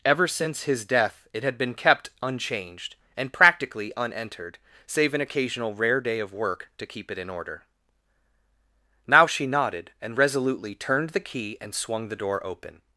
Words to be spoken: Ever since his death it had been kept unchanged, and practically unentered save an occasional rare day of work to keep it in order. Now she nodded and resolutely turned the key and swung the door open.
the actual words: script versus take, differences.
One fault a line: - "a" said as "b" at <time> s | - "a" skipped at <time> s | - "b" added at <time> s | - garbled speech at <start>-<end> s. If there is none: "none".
none